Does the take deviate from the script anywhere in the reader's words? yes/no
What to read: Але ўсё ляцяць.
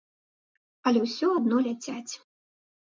yes